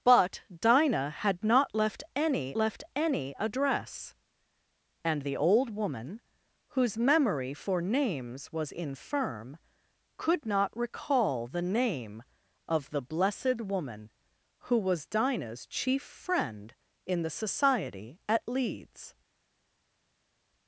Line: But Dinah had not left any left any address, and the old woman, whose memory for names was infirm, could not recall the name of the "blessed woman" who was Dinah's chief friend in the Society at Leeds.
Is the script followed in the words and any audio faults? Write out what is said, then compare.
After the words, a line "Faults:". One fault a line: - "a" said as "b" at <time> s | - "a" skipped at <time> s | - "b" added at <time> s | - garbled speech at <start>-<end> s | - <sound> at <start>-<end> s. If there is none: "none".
But Dinah had not left any left any address, and the old woman, whose memory for names was infirm, could not recall the name of the "blessed woman" who was Dinah's chief friend in the Society at Leeds.
Faults:
none